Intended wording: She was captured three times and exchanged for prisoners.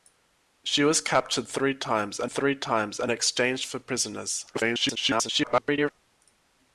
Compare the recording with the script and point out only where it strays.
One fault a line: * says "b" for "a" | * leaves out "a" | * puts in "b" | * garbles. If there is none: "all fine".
* puts in "three times and"
* garbles